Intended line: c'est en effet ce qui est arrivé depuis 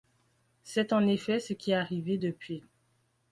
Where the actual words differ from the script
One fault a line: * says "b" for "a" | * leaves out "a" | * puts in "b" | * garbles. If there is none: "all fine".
all fine